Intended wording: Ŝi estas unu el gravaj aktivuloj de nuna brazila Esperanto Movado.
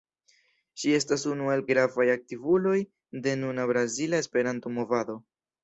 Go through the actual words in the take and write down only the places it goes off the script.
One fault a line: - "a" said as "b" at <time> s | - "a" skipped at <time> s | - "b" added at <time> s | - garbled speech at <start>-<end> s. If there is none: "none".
none